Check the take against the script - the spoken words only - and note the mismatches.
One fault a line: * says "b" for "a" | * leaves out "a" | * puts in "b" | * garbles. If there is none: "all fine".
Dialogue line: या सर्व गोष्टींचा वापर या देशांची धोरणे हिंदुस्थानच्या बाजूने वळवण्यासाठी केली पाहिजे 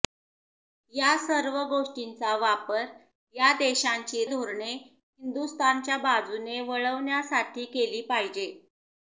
all fine